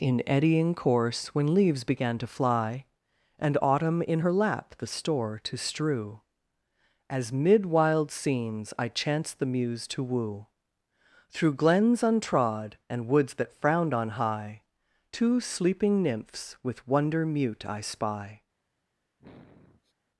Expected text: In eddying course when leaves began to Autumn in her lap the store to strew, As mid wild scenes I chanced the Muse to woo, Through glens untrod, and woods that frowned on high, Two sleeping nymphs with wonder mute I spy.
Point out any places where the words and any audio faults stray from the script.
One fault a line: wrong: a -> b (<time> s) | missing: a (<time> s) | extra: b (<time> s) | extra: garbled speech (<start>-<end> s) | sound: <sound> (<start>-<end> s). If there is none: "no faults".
extra: fly And (2.3 s)
sound: sniff (19.2-19.9 s)